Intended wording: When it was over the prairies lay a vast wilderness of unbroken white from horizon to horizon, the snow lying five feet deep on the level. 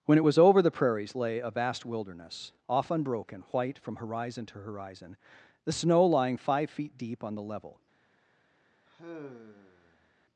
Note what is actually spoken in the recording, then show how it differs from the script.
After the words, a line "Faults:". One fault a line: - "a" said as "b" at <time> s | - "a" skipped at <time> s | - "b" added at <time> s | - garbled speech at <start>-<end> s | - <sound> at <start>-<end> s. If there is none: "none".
When it was over the prairies lay a vast wilderness off unbroken white from horizon to horizon, the snow lying five feet deep on the level.
Faults:
- "of" said as "off" at 2.7 s
- sigh at 8.9-10.1 s